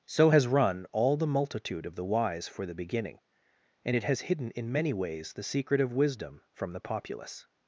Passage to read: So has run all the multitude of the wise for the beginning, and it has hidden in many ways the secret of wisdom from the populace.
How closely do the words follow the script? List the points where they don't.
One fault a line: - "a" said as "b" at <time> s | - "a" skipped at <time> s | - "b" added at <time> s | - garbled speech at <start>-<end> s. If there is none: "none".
none